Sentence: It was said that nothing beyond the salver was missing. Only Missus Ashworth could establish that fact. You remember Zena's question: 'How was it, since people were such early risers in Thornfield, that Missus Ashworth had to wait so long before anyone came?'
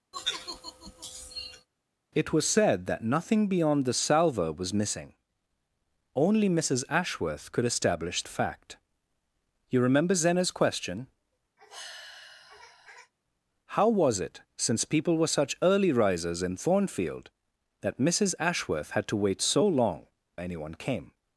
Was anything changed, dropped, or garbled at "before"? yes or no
yes